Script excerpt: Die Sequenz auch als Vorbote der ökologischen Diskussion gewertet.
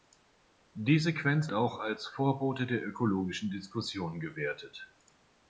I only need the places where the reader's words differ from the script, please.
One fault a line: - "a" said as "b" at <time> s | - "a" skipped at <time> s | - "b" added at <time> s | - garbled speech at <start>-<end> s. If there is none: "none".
none